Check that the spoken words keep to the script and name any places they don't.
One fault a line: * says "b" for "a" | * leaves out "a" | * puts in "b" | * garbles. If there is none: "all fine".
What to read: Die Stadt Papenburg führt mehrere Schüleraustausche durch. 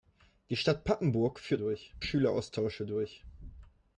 * says "durch" for "mehrere"